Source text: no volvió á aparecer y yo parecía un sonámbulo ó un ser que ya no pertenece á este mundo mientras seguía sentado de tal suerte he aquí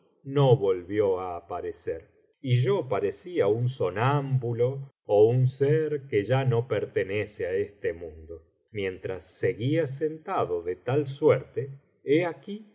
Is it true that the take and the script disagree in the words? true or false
false